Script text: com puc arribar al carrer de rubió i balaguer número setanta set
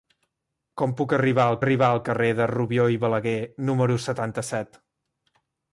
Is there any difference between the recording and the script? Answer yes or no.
yes